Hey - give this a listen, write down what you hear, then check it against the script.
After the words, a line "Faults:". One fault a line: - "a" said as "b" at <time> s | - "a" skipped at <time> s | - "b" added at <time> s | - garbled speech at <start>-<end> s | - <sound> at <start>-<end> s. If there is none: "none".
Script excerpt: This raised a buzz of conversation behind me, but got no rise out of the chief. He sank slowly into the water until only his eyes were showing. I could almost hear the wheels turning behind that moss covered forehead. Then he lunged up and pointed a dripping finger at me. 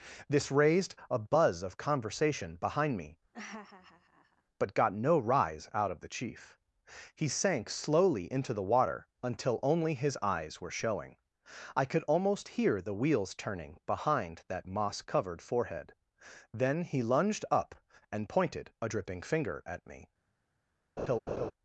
This raised a buzz of conversation behind me, but got no rise out of the chief. He sank slowly into the water until only his eyes were showing. I could almost hear the wheels turning behind that moss covered forehead. Then he lunged up and pointed a dripping finger at me.
Faults:
- laugh at 3.3-4.4 s
- laugh at 21.0-21.5 s